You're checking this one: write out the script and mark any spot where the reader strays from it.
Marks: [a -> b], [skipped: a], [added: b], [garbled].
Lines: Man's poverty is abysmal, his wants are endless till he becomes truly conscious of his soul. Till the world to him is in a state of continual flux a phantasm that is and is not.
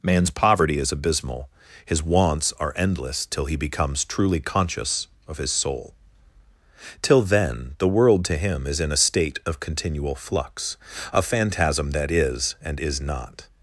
Man's poverty is abysmal, his wants are endless till he becomes truly conscious of his soul. Till [added: then] the world to him is in a state of continual flux a phantasm that is and is not.